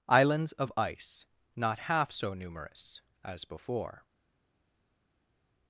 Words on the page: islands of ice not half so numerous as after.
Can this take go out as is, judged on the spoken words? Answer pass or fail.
fail